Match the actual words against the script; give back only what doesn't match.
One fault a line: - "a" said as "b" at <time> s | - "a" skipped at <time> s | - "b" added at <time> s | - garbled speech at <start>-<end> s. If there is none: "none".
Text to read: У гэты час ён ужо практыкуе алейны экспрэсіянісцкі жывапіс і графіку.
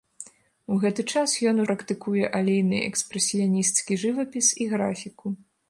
- "ужо" skipped at 1.6 s